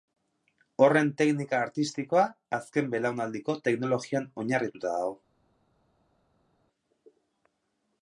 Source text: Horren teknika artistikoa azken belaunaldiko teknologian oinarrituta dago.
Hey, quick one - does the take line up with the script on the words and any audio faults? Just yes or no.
yes